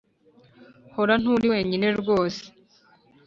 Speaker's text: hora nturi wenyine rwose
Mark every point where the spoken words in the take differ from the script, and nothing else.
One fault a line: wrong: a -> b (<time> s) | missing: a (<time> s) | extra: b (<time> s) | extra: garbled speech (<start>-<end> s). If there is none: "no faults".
no faults